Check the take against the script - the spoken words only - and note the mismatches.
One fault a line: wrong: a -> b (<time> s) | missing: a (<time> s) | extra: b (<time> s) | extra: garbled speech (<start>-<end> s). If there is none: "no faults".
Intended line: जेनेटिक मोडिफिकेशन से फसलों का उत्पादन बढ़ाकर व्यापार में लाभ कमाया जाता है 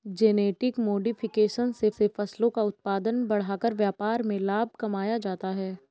extra: से (1.9 s)